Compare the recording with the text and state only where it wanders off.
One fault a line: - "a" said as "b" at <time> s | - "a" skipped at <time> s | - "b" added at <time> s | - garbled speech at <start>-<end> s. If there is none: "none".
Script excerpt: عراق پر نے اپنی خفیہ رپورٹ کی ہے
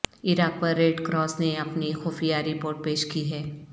- "ریڈ کراس" added at 0.8 s
- "پیش" added at 2.8 s